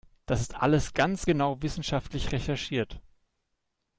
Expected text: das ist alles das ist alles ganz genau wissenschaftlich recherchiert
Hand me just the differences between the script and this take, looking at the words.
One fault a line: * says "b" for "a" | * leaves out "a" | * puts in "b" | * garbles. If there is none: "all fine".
* leaves out "das ist alles"